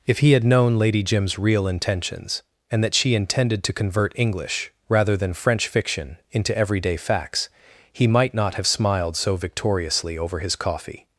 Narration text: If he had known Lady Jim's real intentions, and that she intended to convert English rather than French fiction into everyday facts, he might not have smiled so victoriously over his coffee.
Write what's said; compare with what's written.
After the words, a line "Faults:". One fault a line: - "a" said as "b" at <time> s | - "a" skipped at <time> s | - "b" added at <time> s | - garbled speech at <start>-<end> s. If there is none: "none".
If he had known Lady Jim's real intentions, and that she intended to convert English rather than French fiction into everyday facts, he might not have smiled so victoriously over his coffee.
Faults:
none